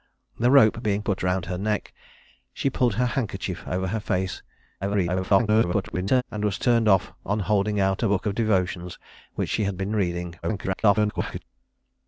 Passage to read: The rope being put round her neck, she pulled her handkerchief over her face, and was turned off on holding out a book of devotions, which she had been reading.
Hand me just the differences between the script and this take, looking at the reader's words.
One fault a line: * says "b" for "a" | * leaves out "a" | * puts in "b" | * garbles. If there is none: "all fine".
* garbles
* garbles